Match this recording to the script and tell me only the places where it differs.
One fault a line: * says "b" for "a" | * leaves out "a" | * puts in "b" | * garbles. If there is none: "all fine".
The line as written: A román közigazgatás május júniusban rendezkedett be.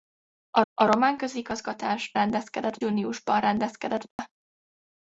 * puts in "a"
* says "rendezkedett" for "május"